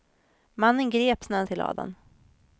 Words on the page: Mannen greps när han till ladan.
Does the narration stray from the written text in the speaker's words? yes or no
no